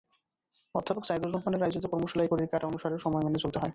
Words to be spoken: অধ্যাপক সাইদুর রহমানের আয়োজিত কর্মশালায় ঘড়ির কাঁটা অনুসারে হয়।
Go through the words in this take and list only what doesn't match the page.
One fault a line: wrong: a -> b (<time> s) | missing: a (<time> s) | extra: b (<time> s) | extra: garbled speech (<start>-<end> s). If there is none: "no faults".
extra: সময় মেনে চলতে (3.0 s)